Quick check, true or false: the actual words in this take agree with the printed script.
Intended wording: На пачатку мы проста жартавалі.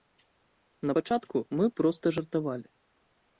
true